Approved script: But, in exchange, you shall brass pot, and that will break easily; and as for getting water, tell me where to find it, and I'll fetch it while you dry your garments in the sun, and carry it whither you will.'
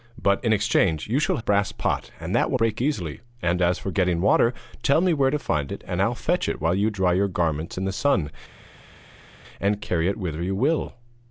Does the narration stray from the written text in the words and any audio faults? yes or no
no